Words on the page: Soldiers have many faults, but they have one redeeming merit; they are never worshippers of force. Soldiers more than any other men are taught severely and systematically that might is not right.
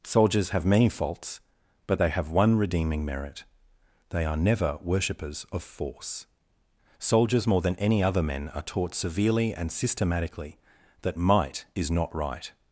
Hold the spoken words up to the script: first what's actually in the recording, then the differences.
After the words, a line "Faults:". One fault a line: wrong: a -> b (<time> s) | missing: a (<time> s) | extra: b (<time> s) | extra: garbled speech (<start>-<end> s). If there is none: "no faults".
Soldiers have many faults, but they have one redeeming merit; they are never worshippers of force. Soldiers more than any other men are taught severely and systematically that might is not right.
Faults:
no faults